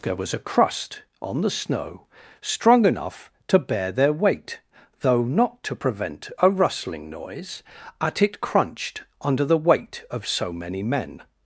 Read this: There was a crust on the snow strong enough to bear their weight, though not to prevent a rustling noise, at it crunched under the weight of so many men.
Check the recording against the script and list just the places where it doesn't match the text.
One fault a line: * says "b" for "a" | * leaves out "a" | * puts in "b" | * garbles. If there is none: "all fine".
all fine